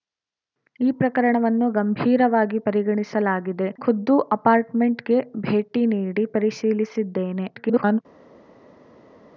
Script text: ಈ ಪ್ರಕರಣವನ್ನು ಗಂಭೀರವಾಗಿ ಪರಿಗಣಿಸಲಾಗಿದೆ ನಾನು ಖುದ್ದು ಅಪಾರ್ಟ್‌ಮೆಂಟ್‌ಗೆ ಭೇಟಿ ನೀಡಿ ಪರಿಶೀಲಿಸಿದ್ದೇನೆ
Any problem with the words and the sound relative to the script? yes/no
yes